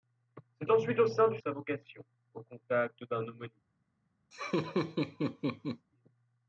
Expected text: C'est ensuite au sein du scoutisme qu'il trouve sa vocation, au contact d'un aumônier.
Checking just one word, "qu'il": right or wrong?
wrong